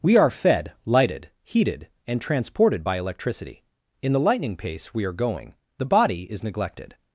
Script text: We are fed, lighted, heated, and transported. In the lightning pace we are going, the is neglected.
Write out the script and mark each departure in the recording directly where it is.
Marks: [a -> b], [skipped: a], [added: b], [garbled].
We are fed, lighted, heated, and transported. [added: by electricity] In the lightning pace we are going, the [added: body] is neglected.